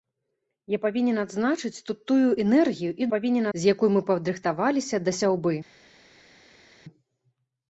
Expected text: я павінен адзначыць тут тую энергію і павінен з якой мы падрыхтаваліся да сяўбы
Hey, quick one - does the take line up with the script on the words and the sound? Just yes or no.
yes